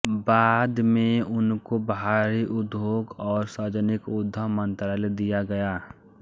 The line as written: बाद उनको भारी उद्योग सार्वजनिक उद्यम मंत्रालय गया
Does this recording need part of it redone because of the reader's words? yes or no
yes